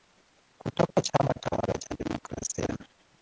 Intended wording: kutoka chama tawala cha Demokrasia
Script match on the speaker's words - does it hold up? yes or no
yes